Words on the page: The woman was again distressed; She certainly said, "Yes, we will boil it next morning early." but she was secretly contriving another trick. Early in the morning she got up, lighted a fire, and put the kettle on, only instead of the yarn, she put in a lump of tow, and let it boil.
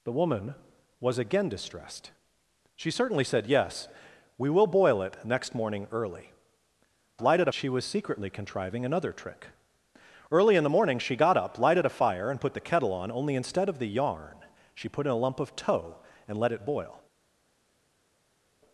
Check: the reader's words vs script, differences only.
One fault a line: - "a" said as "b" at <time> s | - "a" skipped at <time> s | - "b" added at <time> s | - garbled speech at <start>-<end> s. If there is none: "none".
- "but" said as "lighted" at 7.2 s